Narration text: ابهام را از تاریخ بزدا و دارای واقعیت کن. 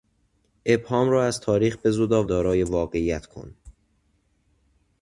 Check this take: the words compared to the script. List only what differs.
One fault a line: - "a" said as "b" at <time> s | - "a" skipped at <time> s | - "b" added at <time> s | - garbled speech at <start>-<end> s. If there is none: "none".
none